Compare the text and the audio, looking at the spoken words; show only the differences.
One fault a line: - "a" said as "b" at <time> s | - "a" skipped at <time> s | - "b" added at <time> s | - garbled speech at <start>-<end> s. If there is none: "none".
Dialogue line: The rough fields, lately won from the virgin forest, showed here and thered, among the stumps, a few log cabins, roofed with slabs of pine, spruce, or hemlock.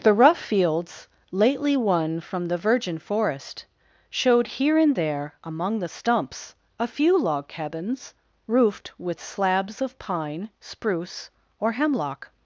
- "thered" said as "there" at 5.0 s